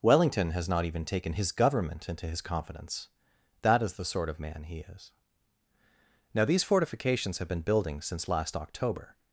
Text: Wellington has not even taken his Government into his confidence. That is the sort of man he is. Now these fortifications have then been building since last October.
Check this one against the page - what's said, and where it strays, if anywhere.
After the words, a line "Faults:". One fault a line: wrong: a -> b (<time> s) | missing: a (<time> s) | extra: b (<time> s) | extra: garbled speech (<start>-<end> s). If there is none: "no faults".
Wellington has not even taken his Government into his confidence. That is the sort of man he is. Now these fortifications have been building since last October.
Faults:
missing: then (7.5 s)